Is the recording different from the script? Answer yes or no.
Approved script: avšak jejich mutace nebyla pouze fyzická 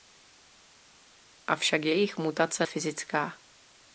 yes